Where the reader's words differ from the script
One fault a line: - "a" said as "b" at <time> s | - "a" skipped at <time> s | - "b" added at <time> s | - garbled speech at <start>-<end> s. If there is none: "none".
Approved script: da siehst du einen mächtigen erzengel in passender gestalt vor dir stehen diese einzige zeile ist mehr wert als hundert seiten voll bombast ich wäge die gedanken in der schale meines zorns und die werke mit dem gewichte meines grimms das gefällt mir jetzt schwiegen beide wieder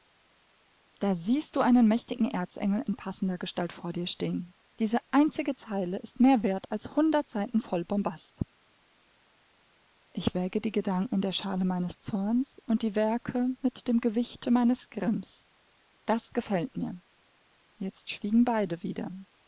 none